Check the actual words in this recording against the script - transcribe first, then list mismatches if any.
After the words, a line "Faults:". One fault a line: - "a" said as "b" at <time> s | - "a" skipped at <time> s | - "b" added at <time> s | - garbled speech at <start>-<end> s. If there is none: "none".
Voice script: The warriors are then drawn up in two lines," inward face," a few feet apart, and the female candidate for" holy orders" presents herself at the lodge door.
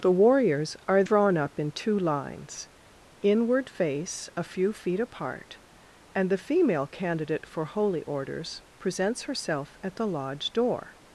The warriors are drawn up in two lines," inward face," a few feet apart, and the female candidate for" holy orders" presents herself at the lodge door.
Faults:
- "then" skipped at 1.0 s